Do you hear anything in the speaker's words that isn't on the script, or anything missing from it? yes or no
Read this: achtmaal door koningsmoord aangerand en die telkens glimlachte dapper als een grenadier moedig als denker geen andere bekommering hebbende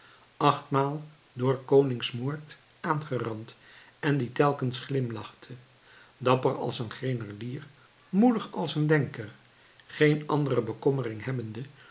yes